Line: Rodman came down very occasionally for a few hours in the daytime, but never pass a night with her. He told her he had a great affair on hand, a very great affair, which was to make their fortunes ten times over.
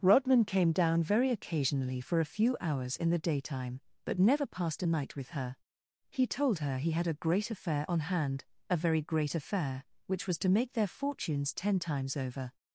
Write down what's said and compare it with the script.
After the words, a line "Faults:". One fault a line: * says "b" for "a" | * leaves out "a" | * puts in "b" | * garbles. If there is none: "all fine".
Rodman came down very occasionally for a few hours in the daytime, but never passed a night with her. He told her he had a great affair on hand, a very great affair, which was to make their fortunes ten times over.
Faults:
* says "passed" for "pass"